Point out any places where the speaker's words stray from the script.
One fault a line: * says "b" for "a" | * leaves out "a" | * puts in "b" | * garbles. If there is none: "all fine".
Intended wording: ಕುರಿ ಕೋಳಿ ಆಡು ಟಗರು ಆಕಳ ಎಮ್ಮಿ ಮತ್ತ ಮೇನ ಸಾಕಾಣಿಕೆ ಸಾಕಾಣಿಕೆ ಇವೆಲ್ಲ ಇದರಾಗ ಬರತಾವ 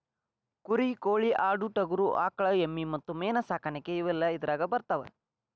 * leaves out "ಸಾಕಾಣಿಕೆ"